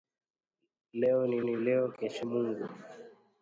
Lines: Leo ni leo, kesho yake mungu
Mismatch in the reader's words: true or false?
true